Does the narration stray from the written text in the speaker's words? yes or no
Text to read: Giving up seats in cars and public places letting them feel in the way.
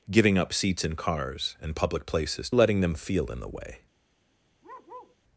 no